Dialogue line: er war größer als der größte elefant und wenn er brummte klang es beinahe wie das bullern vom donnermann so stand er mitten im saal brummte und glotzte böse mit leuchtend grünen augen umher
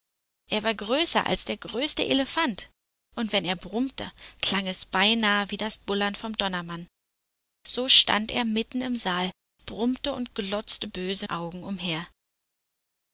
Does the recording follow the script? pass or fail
fail